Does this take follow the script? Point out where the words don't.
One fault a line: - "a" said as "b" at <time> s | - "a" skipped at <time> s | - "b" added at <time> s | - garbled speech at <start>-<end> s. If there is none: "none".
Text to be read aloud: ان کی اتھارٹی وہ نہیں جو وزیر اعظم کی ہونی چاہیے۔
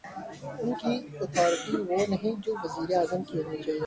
none